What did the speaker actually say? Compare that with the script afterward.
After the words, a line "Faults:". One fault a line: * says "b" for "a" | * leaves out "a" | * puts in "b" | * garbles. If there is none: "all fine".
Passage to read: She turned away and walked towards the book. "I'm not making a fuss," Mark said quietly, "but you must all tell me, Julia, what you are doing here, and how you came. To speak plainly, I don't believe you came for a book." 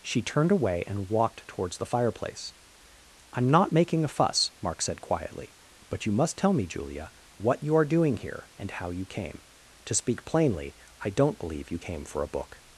She turned away and walked towards the fireplace. "I'm not making a fuss," Mark said quietly, "but you must tell me, Julia, what you are doing here, and how you came. To speak plainly, I don't believe you came for a book."
Faults:
* says "fireplace" for "book"
* leaves out "all"